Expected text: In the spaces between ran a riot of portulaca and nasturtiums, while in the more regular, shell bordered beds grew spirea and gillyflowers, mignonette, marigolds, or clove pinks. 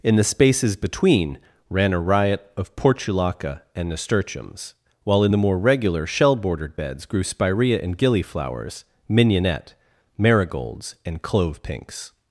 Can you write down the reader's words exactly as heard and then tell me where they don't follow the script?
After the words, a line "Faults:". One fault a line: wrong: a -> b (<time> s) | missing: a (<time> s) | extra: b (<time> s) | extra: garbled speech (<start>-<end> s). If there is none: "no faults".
In the spaces between ran a riot of portulaca and nasturtiums, while in the more regular, shell bordered beds grew spirea and gillyflowers, mignonette, marigolds, and clove pinks.
Faults:
wrong: or -> and (11.0 s)